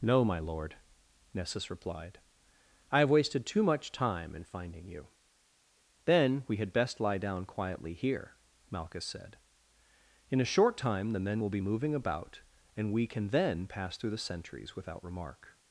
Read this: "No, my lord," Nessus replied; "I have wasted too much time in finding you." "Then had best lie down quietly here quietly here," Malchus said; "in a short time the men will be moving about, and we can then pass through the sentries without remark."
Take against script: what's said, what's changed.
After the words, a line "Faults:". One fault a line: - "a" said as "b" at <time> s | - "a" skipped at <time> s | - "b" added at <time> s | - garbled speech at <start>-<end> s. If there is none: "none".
"No, my lord," Nessus replied; "I have wasted too much time in finding you." "Then we had best lie down quietly here," Malchus said; "in a short time the men will be moving about, and we can then pass through the sentries without remark."
Faults:
- "we" added at 6.5 s
- "quietly here" skipped at 8.4 s